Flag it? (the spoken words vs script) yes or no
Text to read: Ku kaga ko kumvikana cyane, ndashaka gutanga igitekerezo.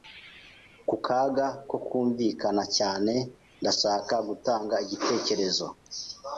no